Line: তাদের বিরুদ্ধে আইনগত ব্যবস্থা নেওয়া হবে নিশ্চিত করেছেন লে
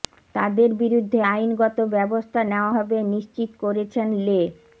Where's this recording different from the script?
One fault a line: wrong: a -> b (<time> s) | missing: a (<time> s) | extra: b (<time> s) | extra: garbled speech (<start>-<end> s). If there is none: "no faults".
no faults